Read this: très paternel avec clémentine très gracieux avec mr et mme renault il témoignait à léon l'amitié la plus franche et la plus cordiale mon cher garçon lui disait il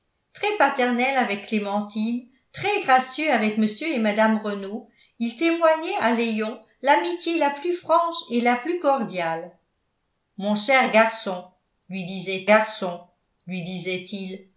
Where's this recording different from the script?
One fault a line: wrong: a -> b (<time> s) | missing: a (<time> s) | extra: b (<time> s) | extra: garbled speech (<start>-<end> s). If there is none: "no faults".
extra: garçon lui disait (12.5 s)